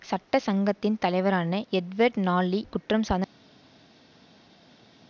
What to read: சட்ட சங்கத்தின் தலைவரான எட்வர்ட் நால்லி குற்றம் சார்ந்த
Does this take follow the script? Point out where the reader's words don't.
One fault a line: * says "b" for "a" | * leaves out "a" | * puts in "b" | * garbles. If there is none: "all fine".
all fine